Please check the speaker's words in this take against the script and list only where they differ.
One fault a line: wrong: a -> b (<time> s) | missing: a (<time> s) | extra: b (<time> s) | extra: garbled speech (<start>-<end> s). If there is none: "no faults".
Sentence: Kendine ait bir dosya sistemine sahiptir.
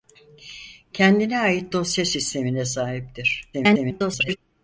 missing: bir (1.7 s)
extra: garbled speech (3.5-4.4 s)